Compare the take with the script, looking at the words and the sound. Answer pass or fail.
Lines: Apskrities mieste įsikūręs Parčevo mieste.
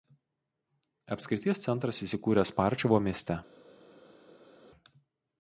fail